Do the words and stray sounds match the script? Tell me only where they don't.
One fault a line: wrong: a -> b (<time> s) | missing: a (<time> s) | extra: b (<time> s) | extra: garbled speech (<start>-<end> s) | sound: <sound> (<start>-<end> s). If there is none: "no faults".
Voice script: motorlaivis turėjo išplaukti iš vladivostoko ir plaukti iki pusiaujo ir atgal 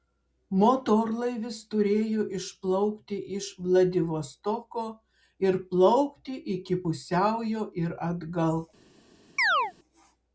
sound: chirp (9.4-9.7 s)